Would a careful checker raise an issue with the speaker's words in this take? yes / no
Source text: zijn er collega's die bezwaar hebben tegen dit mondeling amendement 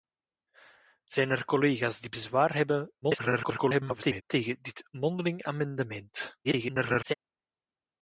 yes